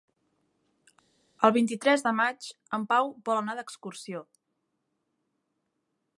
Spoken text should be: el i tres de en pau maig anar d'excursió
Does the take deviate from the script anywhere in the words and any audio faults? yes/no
yes